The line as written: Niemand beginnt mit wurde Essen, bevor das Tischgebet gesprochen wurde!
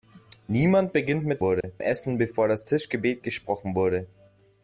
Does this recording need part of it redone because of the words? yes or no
no